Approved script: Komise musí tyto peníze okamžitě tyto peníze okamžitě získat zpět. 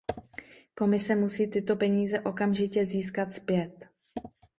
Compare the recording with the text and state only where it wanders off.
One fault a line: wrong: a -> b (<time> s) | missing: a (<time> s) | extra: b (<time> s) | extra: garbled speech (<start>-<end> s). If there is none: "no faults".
missing: tyto peníze okamžitě (2.8 s)